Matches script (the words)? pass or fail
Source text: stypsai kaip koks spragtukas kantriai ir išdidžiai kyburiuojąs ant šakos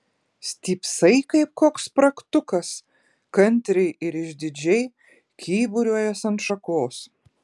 pass